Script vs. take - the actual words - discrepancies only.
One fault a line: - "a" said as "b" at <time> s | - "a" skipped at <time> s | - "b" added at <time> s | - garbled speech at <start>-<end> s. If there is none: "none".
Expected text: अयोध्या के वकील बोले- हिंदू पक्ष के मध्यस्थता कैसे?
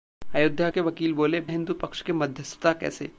none